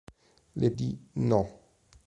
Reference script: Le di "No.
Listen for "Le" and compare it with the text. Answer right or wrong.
right